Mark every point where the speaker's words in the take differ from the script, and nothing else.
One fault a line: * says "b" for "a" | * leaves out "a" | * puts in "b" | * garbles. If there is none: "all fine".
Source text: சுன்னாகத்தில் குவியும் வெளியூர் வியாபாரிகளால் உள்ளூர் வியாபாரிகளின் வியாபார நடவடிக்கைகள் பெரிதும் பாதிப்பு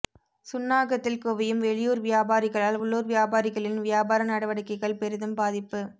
all fine